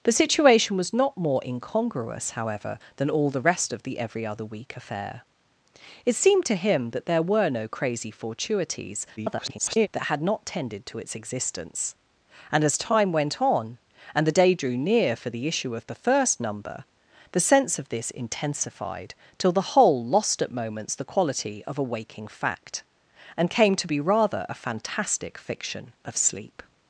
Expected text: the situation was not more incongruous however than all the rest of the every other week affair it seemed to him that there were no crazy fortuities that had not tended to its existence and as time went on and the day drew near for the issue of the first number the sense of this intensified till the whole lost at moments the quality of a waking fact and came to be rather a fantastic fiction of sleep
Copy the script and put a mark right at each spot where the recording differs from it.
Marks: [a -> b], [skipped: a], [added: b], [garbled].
the situation was not more incongruous however than all the rest of the every other week affair it seemed to him that there were no crazy fortuities [garbled] that had not tended to its existence and as time went on and the day drew near for the issue of the first number the sense of this intensified till the whole lost at moments the quality of a waking fact and came to be rather a fantastic fiction of sleep